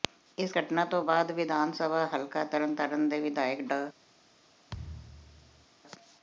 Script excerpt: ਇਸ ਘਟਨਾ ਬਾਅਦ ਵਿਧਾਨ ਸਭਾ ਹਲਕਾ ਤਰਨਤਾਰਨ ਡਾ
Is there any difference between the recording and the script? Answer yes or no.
yes